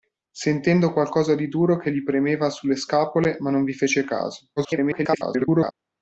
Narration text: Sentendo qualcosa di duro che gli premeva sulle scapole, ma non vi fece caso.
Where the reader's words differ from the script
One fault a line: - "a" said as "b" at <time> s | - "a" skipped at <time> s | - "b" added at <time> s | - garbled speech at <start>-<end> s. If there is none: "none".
- garbled speech at 4.6-5.7 s